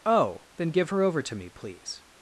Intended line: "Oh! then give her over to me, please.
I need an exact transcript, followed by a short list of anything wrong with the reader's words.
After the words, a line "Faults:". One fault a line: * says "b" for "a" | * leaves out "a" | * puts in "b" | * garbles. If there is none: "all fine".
"Oh! then give her over to me, please.
Faults:
all fine